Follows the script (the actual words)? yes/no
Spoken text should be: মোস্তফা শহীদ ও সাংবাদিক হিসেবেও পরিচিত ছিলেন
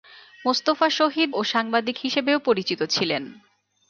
yes